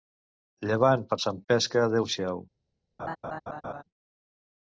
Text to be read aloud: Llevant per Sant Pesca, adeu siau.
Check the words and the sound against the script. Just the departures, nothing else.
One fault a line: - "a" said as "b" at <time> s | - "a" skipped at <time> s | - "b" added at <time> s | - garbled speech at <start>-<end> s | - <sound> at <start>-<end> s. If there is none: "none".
- laugh at 3.0-3.8 s